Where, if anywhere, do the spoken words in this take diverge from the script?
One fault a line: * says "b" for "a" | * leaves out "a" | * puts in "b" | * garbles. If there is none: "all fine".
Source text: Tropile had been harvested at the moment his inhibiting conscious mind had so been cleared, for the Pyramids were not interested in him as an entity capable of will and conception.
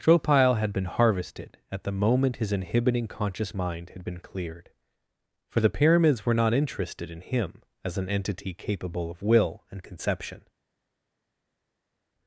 * leaves out "so"